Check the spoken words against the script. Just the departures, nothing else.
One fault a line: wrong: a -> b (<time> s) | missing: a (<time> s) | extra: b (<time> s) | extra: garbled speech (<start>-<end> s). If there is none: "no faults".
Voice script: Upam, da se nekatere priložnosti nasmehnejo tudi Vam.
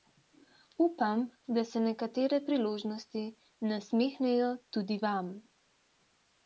no faults